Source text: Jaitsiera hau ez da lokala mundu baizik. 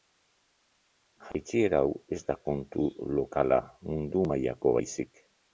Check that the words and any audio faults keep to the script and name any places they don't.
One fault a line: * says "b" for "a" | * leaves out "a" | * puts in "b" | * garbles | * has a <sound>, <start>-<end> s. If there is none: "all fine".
* has a dropout, 1.3-1.3 s
* puts in "kontu"
* puts in "mailako"